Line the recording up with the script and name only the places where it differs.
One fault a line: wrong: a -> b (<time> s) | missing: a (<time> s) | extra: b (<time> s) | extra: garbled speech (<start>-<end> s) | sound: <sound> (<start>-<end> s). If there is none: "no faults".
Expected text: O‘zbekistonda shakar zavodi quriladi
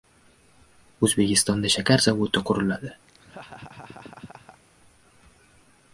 sound: laugh (3.1-4.6 s)